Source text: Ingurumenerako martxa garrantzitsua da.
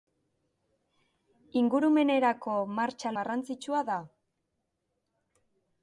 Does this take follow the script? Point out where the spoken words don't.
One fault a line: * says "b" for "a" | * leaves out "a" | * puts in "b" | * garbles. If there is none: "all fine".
all fine